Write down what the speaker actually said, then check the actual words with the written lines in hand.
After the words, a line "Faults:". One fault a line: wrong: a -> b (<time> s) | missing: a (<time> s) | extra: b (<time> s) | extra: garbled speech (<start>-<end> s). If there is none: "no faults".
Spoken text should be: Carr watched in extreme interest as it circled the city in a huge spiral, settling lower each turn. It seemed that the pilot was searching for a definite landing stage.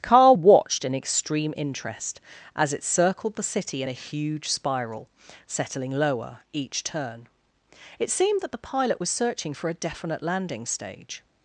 Carr watched in extreme interest as it circled the city in a huge spiral, settling lower each turn. It seemed that the pilot was searching for a definite landing stage.
Faults:
no faults